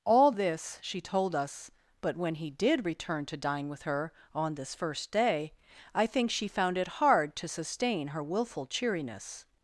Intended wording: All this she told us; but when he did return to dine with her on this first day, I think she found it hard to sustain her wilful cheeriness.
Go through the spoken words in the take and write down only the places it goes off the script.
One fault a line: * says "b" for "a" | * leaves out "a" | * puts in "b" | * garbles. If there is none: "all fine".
all fine